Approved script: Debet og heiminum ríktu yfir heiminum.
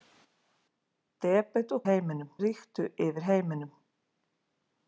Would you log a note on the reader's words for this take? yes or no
no